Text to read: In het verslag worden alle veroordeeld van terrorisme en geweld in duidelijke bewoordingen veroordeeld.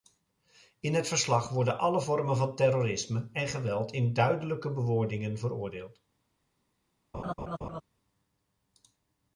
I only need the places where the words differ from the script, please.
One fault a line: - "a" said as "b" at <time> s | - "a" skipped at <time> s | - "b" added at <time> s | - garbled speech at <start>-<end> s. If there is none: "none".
- "veroordeeld" said as "vormen" at 2.0 s